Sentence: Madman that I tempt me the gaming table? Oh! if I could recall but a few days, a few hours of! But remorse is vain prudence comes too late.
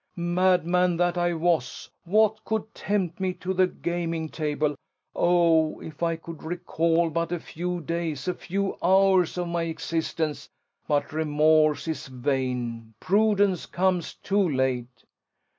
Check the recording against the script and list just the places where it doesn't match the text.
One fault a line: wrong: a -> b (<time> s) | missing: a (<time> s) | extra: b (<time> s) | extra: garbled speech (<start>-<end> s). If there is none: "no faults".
extra: was what could (1.4 s)
extra: to (3.4 s)
extra: my existence (9.5 s)